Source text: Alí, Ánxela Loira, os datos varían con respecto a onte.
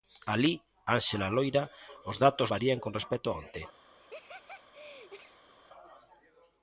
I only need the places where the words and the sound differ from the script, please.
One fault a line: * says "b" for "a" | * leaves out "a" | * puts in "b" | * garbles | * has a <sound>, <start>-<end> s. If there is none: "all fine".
* has a laugh, 4.0-5.5 s